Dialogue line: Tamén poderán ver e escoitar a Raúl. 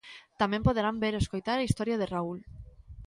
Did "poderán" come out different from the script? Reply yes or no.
no